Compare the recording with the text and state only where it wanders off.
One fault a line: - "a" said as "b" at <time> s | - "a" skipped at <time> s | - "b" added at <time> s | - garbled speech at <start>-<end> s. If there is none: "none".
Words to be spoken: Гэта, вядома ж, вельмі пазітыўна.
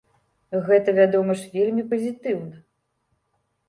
none